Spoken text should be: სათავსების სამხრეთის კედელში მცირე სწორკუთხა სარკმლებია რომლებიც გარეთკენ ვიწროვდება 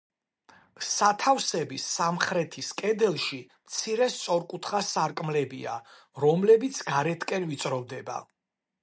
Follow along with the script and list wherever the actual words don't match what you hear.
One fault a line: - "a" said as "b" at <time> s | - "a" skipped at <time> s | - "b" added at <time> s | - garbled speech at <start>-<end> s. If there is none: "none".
none